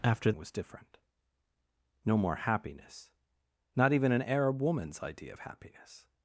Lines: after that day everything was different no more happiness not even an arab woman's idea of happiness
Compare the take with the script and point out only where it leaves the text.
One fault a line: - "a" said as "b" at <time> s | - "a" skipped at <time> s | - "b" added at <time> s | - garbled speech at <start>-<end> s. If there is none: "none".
- "that day everything" skipped at 0.3 s